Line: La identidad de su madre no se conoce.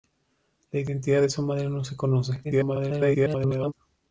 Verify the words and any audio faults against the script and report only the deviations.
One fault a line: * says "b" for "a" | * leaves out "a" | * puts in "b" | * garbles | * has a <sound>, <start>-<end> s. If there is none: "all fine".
* garbles